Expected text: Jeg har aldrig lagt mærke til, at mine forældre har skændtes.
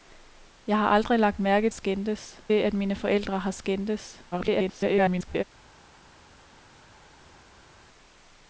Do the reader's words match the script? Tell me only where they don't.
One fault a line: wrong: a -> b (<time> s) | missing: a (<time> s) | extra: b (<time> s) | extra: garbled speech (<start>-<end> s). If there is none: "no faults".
wrong: til -> skændtes (1.7 s)
extra: garbled speech (4.3-5.4 s)